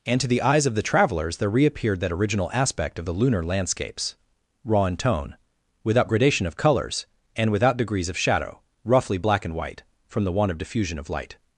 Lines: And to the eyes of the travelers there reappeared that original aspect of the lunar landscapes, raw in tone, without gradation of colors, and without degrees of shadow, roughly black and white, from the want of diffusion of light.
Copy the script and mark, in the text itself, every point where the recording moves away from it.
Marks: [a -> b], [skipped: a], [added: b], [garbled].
And to the eyes of the travelers there reappeared that original aspect of the lunar landscapes, raw in tone, without gradation of colors, and without degrees of shadow, roughly black and white, from the want of diffusion of light.